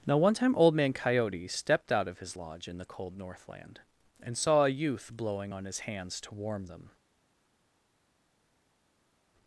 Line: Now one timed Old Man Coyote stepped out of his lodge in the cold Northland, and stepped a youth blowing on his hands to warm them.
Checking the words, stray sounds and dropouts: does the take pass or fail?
fail